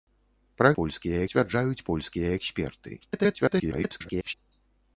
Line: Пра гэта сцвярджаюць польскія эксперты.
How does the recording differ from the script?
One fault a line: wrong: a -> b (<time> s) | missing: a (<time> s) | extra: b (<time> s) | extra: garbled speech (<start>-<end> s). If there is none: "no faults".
wrong: гэта -> польскія (0.8 s)
extra: garbled speech (3.0-4.3 s)